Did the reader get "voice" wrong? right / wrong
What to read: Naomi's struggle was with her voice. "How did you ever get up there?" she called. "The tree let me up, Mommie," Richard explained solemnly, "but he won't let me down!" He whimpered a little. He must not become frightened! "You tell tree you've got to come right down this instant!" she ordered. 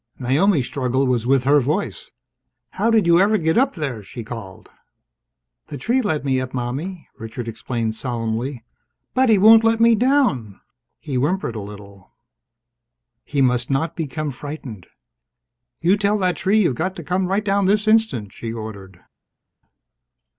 right